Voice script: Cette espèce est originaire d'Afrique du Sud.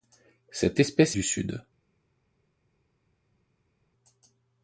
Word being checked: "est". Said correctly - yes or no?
no